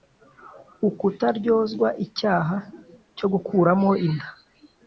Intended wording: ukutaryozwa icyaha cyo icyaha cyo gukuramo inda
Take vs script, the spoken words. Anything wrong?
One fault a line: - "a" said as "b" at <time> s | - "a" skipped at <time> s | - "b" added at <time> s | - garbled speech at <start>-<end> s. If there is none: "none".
- "icyaha cyo" skipped at 3.3 s